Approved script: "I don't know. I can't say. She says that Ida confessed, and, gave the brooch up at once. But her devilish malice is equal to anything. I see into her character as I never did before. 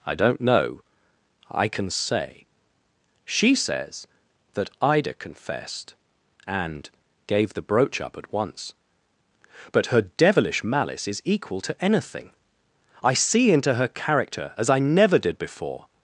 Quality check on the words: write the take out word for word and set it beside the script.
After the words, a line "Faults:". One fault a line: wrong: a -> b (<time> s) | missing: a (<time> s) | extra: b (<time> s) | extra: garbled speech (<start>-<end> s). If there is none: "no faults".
"I don't know. I can say. She says that Ida confessed, and, gave the brooch up at once. But her devilish malice is equal to anything. I see into her character as I never did before.
Faults:
wrong: can't -> can (1.7 s)